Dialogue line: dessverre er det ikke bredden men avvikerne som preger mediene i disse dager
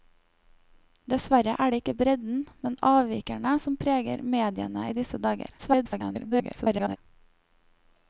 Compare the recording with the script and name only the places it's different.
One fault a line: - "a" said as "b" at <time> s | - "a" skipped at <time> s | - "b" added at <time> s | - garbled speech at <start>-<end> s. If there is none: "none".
- garbled speech at 5.6-7.0 s